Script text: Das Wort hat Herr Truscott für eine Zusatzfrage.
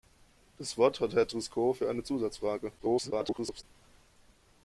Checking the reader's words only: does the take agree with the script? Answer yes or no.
no